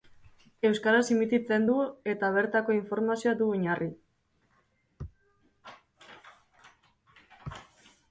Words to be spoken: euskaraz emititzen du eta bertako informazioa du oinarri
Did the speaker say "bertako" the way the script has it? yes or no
yes